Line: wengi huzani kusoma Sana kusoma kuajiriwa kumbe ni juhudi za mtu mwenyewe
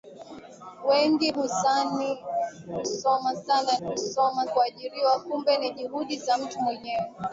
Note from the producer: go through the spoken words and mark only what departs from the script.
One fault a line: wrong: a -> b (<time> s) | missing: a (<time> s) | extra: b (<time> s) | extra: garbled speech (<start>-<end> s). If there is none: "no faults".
no faults